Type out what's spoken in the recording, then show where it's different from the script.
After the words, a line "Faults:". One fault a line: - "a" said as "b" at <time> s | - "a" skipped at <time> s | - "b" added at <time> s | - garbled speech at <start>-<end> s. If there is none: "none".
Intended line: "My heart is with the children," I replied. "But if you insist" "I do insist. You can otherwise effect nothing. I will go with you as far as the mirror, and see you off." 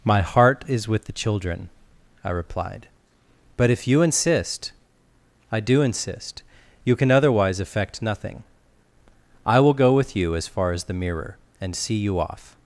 "My heart is with the children," I replied. "But if you insist" "I do insist. You can otherwise effect nothing. I will go with you as far as the mirror, and see you off."
Faults:
none